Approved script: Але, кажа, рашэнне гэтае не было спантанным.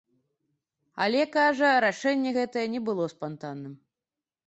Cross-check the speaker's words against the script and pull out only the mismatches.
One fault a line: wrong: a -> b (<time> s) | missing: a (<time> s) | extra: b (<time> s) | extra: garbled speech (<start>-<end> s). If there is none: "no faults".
no faults